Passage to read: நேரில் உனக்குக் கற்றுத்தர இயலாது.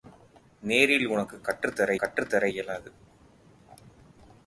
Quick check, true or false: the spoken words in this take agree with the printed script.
false